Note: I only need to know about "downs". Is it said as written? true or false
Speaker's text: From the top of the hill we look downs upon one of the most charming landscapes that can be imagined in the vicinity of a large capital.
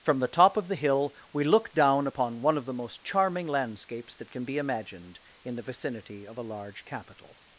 false